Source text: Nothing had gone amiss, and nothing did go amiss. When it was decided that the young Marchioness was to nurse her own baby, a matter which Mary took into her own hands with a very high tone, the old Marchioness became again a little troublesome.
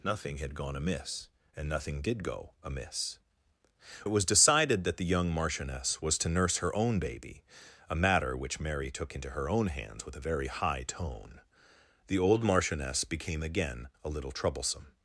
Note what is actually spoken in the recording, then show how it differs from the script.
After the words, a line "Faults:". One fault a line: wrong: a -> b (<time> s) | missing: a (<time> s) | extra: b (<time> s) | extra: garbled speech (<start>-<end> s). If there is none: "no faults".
Nothing had gone amiss, and nothing did go amiss. It was decided that the young Marchioness was to nurse her own baby, a matter which Mary took into her own hands with a very high tone, the old Marchioness became again a little troublesome.
Faults:
missing: When (3.2 s)